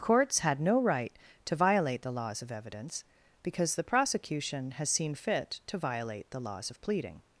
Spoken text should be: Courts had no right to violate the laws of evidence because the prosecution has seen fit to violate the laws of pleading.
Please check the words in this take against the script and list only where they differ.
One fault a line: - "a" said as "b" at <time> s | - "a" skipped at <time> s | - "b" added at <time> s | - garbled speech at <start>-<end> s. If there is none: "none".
none